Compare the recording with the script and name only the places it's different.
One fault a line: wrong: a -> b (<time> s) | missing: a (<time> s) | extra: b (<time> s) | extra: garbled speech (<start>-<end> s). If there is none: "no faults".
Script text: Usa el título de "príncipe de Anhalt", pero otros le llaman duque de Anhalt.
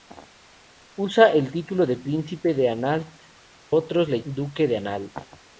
missing: pero (3.1 s)
missing: llaman (4.2 s)